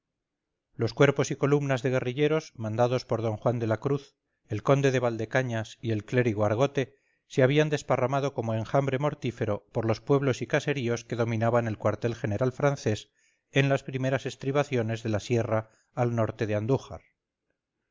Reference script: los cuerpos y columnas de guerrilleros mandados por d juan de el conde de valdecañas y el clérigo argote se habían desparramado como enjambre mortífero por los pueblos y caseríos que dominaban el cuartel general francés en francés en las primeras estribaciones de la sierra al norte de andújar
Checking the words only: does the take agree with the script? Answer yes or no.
no